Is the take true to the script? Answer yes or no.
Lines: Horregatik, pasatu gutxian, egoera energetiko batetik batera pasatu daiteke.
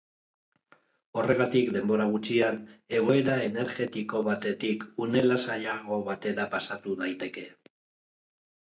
no